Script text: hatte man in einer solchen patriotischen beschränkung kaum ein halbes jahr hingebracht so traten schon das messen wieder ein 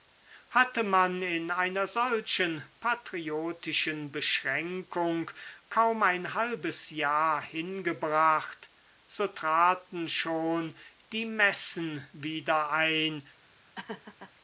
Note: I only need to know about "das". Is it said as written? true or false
false